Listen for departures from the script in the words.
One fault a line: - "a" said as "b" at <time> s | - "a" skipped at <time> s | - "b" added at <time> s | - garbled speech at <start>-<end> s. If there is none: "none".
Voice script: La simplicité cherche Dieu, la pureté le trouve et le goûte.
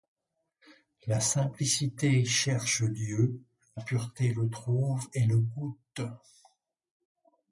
none